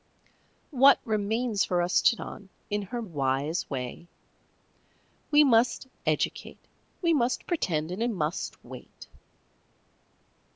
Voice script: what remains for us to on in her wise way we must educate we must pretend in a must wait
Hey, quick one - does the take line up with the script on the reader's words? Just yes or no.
yes